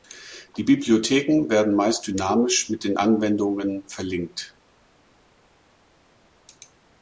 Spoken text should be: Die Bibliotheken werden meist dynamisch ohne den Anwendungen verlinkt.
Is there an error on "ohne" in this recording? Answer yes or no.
yes